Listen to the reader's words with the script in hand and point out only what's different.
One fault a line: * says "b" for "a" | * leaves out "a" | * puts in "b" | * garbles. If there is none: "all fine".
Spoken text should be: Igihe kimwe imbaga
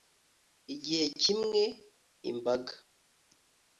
all fine